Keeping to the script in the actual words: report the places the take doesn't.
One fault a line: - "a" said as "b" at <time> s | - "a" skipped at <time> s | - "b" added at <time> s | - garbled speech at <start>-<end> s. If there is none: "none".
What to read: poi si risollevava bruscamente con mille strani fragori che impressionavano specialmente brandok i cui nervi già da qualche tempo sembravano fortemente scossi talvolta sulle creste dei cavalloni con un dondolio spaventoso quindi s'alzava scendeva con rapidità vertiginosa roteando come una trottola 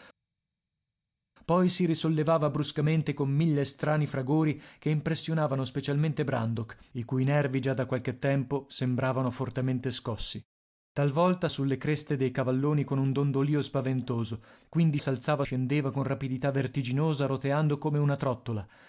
none